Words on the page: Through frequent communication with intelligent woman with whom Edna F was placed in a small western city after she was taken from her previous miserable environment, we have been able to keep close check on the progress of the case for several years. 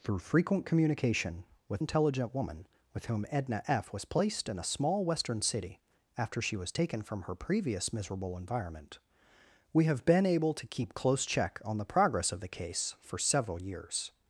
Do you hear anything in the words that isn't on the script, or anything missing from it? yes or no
no